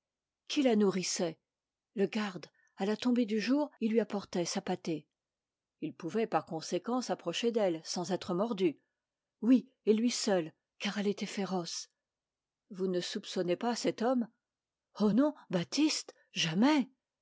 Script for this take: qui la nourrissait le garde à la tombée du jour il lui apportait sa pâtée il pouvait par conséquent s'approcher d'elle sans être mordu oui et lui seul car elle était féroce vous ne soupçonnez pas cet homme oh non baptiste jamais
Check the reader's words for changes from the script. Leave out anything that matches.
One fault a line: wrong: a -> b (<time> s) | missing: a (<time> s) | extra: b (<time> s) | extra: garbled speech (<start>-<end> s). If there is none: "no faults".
no faults